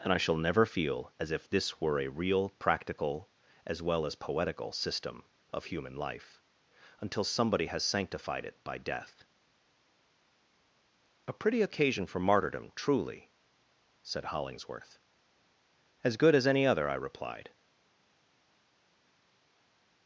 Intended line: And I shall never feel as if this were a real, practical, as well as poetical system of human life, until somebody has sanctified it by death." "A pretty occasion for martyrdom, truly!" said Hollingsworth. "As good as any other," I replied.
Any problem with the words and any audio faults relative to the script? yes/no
no